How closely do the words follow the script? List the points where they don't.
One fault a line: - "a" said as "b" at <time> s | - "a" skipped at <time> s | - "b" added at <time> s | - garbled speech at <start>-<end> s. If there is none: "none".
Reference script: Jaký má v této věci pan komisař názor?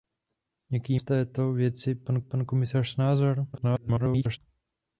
- "má" skipped at 1.0 s
- "pan" added at 2.2 s
- garbled speech at 3.5-4.4 s